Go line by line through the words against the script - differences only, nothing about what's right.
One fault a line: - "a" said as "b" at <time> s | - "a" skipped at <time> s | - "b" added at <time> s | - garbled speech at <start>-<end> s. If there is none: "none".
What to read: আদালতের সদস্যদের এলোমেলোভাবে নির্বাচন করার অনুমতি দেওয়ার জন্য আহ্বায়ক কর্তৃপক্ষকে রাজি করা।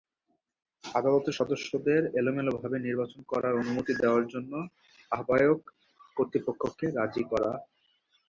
none